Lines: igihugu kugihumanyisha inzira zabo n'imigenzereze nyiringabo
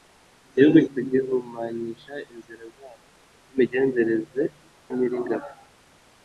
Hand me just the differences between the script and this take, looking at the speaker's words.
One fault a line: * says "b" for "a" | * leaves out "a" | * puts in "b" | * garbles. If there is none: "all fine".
all fine